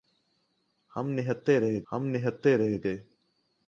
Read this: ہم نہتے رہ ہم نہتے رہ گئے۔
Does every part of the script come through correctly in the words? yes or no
yes